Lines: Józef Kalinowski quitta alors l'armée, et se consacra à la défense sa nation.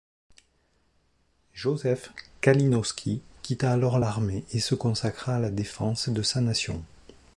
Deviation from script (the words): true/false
true